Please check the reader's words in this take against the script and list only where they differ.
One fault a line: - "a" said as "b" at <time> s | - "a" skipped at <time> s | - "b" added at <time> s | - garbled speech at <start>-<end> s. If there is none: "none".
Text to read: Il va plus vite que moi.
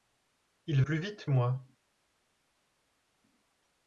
- "va" skipped at 0.8 s
- "que" skipped at 1.3 s